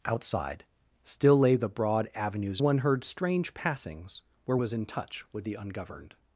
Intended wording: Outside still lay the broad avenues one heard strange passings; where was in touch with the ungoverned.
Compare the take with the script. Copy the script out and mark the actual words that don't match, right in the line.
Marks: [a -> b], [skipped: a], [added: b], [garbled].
Outside still lay the broad avenues one heard strange passings; where was in touch with the ungoverned.